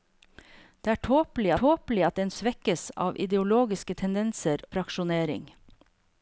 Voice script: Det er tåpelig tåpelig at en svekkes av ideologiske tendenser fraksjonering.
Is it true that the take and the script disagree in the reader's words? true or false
false